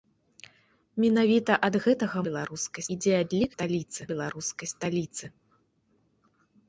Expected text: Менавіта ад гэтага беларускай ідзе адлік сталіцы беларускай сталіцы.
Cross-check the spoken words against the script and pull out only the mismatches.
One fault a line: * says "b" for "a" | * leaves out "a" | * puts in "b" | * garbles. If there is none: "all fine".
all fine